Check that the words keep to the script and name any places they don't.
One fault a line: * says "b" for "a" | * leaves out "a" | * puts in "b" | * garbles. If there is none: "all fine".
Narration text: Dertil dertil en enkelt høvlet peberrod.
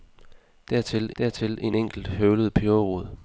all fine